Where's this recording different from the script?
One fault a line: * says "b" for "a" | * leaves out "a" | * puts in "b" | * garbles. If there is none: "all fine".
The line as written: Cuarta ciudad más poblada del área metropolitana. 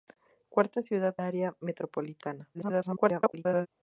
* leaves out "más poblada del"
* garbles